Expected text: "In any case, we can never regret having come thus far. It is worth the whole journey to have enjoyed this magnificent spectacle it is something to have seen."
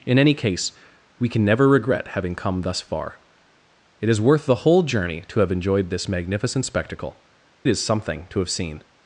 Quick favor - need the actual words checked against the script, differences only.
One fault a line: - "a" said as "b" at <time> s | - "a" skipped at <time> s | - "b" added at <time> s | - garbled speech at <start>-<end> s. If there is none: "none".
- "it" skipped at 7.2 s